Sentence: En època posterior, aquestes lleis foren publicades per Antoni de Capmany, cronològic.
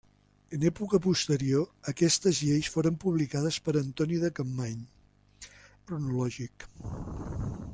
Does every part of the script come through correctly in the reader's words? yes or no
yes